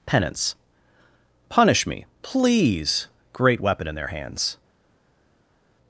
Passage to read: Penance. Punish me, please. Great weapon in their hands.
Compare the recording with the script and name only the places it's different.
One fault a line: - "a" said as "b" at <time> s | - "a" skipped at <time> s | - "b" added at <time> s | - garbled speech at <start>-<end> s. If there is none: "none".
none